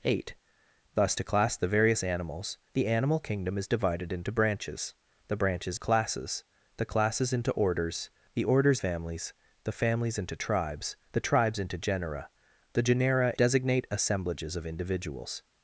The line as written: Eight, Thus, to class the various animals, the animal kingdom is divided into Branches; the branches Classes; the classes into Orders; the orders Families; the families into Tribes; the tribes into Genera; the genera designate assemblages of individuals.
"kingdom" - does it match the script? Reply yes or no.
yes